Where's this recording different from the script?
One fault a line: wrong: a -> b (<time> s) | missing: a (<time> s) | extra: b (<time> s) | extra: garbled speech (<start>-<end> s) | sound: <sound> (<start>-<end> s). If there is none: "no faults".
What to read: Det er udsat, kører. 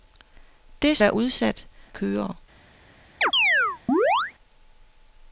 sound: chirp (3.2-4.3 s)